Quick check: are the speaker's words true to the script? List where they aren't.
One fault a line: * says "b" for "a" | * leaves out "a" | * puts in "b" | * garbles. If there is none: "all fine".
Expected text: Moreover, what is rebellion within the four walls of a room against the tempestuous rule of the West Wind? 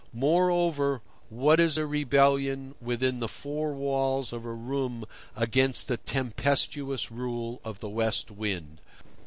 * puts in "a"